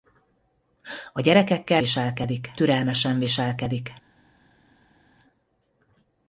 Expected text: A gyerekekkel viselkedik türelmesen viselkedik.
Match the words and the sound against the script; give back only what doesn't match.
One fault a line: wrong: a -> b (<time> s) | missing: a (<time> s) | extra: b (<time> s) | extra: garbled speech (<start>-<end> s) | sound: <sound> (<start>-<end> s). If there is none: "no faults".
no faults